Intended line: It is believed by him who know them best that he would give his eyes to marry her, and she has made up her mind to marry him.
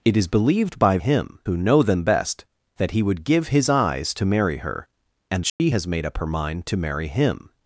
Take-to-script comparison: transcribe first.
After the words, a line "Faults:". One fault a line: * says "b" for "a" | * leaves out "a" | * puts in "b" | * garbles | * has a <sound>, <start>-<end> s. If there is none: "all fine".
It is believed by him who know them best that he would give his eyes to marry her, and she has made up her mind to marry him.
Faults:
* has a dropout, 5.5-5.6 s